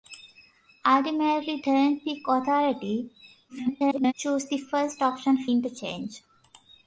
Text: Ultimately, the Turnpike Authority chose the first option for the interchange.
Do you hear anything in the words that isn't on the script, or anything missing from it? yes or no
yes